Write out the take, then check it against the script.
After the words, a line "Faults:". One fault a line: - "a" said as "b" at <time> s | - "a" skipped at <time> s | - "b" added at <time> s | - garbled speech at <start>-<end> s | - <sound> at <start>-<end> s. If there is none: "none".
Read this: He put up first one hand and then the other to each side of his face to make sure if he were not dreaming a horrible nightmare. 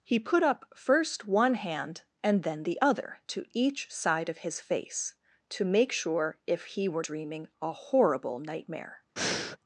He put up first one hand and then the other to each side of his face to make sure if he were dreaming a horrible nightmare.
Faults:
- "not" skipped at 7.0 s
- breath at 9.2-9.6 s